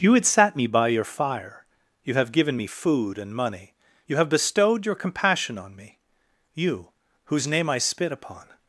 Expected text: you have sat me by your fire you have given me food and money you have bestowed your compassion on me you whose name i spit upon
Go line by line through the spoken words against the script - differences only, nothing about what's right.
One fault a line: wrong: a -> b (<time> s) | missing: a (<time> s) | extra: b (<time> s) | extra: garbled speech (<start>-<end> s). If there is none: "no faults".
wrong: have -> had (0.1 s)